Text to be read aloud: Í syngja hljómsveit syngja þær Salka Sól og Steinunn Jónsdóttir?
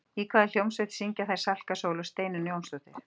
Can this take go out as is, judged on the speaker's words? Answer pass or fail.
fail